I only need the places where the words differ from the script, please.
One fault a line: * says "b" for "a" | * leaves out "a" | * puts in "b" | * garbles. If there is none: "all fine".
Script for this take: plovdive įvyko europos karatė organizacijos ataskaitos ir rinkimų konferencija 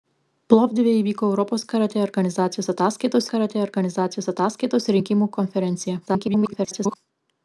* puts in "karatė organizacijos ataskaitos"
* garbles